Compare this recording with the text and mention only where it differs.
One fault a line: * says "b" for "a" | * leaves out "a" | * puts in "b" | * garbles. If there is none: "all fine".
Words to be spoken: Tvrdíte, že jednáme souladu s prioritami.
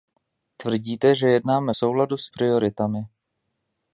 all fine